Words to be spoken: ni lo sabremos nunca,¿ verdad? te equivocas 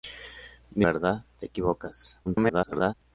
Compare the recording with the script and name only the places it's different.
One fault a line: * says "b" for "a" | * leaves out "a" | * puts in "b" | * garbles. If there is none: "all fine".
* leaves out "lo sabremos nunca"
* garbles